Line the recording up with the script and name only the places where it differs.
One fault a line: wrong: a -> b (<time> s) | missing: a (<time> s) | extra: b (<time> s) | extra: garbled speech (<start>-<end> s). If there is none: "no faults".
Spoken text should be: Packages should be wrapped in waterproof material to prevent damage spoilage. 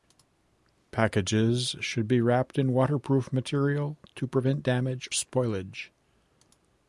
no faults